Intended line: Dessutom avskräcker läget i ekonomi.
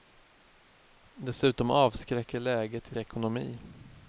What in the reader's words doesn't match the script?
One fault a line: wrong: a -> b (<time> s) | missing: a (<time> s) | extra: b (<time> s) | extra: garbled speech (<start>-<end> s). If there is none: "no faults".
no faults